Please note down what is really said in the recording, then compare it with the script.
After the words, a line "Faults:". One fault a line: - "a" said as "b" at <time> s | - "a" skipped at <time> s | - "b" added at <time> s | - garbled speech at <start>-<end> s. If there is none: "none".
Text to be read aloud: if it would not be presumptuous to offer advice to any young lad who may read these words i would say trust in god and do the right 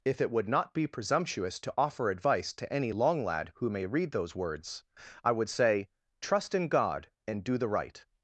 if it would not be presumptuous to offer advice to any long lad who may read those words i would say trust in god and do the right
Faults:
- "young" said as "long" at 2.9 s
- "these" said as "those" at 4.1 s